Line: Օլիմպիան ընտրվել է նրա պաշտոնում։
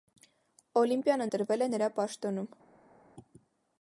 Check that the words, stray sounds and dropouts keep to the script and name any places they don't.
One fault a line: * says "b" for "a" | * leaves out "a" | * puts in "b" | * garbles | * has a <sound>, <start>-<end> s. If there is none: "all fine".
all fine